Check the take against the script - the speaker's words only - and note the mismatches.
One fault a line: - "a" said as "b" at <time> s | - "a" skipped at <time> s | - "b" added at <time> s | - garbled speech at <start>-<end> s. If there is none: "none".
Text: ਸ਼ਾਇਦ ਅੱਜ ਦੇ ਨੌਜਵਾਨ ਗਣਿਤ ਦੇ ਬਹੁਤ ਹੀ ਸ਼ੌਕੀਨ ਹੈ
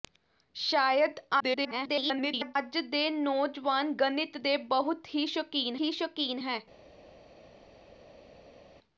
- garbled speech at 1.4-2.6 s
- "ਹੀ ਸ਼ੌਕੀਨ" added at 5.8 s